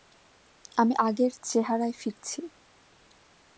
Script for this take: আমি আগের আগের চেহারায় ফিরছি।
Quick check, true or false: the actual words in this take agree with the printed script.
false